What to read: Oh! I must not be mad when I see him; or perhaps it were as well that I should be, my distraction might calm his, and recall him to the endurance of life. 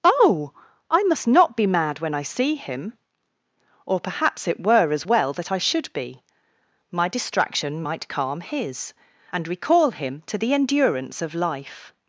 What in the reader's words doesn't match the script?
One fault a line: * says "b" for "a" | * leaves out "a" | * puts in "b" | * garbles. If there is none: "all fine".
all fine